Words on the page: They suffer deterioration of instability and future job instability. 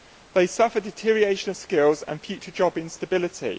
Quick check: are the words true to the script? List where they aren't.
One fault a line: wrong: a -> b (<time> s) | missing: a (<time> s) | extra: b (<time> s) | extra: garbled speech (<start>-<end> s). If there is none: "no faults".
wrong: instability -> skills (1.6 s)